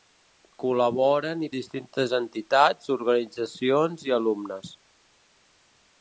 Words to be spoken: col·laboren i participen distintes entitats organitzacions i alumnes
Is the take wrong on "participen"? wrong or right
wrong